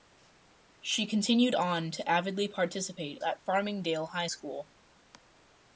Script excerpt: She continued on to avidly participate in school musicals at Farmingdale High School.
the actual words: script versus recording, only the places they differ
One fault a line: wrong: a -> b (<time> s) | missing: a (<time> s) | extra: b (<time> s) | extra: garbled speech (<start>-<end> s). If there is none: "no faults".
missing: in school musicals (3.2 s)